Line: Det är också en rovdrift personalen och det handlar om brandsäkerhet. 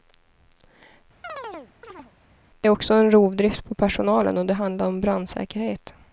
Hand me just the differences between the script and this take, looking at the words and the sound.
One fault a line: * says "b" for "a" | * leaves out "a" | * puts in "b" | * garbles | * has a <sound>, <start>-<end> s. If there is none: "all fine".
* has a chirp, 1.2-2.1 s
* puts in "på"